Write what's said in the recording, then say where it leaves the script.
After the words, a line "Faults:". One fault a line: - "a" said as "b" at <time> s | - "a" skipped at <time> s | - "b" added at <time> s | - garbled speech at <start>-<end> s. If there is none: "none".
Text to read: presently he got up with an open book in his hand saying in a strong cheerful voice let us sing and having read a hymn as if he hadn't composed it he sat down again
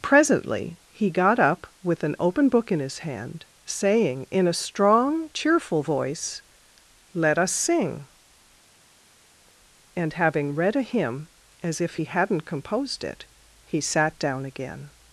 presently he got up with an open book in his hand saying in a strong cheerful voice let us sing and having read a hymn as if he hadn't composed it he sat down again
Faults:
none